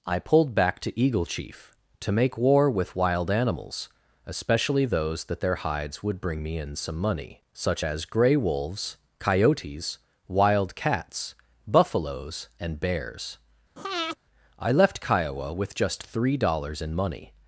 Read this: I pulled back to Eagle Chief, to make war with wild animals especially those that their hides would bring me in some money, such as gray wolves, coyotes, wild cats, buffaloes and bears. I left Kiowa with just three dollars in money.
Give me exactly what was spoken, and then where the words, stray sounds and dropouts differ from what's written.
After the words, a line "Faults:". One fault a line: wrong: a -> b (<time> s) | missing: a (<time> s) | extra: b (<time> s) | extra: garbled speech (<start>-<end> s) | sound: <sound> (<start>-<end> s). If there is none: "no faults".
I pulled back to Eagle Chief, to make war with wild animals especially those that their hides would bring me in some money, such as gray wolves, coyotes, wild cats, buffaloes and bears. I left Kiowa with just three dollars in money.
Faults:
sound: breath (13.8-14.2 s)